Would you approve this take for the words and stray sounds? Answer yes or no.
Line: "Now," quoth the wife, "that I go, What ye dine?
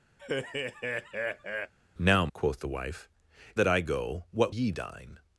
no